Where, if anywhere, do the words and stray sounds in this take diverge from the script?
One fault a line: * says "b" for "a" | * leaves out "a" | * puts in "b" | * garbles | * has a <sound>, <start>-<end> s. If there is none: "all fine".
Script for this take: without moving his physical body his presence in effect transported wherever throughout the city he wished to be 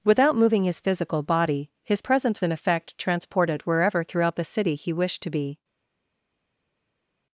all fine